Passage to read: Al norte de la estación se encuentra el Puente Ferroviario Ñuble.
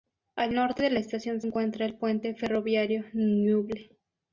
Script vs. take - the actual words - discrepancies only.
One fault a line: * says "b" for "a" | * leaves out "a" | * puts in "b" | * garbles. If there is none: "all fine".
* leaves out "se"